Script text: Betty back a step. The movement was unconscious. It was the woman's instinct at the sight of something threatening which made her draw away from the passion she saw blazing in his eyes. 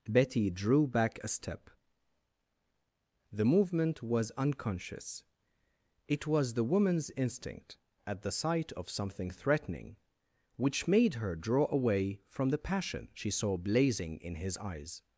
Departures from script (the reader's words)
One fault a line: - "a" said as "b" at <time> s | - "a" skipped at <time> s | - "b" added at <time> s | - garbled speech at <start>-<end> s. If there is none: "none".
- "drew" added at 0.5 s